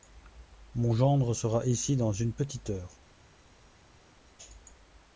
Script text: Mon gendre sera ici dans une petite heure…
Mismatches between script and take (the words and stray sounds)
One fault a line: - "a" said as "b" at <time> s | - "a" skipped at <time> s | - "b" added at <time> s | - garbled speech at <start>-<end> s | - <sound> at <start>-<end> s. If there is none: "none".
none